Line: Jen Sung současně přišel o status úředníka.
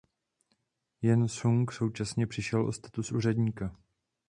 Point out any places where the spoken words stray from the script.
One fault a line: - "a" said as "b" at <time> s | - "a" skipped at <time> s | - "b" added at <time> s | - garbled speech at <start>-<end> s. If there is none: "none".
none